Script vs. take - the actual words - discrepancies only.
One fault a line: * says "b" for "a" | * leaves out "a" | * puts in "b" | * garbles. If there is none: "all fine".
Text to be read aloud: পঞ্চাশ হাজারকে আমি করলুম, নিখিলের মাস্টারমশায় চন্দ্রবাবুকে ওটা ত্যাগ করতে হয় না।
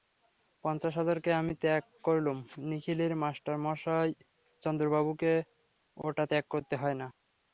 * puts in "ত্যাগ"